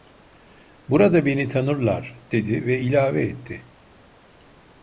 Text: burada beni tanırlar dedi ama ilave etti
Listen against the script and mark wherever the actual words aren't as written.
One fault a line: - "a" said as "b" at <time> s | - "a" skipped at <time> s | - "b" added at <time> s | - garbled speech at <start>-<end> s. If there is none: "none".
- "ama" said as "ve" at 2.6 s